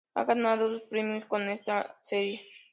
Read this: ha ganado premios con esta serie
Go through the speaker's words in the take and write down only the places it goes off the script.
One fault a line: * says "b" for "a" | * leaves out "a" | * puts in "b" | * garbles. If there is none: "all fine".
* puts in "dos"